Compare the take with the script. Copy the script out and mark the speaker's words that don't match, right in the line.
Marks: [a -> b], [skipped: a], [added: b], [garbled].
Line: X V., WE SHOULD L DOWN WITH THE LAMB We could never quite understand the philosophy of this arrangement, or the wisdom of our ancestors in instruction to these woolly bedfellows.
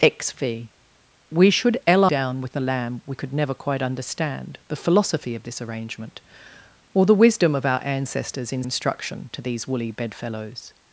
X V., WE SHOULD L DOWN WITH THE LAMB We could never quite understand the philosophy of this arrangement, or the wisdom of our ancestors in instruction to these woolly bedfellows.